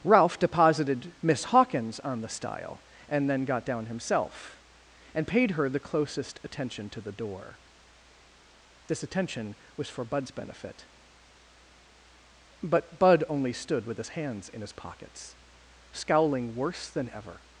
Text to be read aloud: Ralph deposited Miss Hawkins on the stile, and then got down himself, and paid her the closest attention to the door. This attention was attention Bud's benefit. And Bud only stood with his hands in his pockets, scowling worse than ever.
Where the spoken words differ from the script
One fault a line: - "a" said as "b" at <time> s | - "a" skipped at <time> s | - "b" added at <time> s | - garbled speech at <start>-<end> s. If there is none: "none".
- "attention" said as "for" at 9.9 s
- "And" said as "But" at 12.6 s